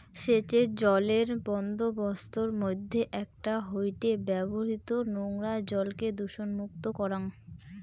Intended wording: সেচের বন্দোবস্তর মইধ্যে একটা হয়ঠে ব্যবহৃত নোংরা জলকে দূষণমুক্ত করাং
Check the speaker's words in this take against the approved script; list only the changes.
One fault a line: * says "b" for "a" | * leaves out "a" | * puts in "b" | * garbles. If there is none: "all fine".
* puts in "জলের"